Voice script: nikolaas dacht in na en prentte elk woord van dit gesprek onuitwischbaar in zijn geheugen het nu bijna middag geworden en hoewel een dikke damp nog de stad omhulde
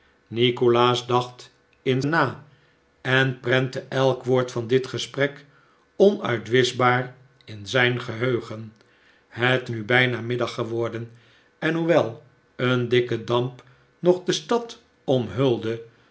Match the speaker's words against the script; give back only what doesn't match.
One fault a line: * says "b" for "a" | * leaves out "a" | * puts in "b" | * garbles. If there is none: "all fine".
all fine